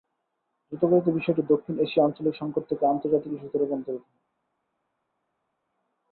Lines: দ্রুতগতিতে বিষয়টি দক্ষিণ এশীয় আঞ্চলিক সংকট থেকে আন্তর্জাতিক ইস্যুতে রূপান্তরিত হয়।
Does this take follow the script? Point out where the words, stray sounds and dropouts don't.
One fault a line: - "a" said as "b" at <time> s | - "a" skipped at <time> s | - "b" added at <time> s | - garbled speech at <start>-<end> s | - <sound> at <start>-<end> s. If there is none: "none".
none